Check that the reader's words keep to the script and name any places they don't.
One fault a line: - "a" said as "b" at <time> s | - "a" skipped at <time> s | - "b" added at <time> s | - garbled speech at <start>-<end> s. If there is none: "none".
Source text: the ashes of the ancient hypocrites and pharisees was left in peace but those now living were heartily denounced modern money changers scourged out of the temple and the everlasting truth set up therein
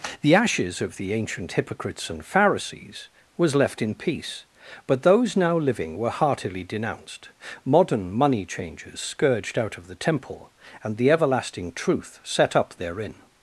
none